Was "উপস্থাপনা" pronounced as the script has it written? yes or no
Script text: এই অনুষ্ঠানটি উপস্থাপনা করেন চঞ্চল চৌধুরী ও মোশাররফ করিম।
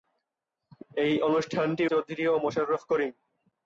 no